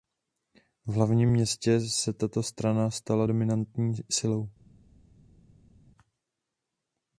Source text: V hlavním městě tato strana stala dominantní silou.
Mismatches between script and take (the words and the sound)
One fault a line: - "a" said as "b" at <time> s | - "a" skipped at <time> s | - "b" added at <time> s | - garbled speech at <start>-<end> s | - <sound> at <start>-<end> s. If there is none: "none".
- "se" added at 1.8 s